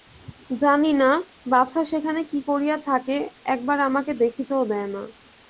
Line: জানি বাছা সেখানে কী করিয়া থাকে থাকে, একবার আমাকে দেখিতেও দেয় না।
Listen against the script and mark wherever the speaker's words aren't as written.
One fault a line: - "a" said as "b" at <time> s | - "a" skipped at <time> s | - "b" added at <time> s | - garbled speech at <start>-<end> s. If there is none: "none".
- "না" added at 0.9 s
- "থাকে" skipped at 3.1 s